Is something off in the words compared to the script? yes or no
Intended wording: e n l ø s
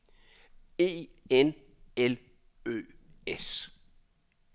no